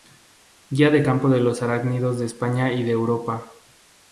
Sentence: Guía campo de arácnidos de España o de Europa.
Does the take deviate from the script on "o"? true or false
true